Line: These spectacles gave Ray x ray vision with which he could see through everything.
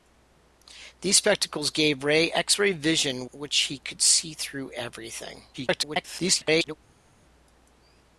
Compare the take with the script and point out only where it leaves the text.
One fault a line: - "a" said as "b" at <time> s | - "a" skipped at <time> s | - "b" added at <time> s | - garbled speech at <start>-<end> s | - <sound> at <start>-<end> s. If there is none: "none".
- "with" skipped at 3.3 s
- garbled speech at 5.5-6.8 s